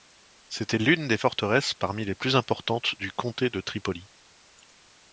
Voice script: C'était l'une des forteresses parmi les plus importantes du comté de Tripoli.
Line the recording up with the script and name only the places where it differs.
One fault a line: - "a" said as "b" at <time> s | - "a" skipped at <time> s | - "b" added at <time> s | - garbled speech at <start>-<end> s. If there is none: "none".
none